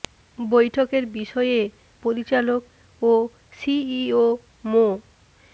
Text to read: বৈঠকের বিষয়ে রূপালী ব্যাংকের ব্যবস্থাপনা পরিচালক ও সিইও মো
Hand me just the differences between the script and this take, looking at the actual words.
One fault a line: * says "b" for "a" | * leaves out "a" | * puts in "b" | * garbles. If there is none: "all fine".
* leaves out "রূপালী ব্যাংকের ব্যবস্থাপনা"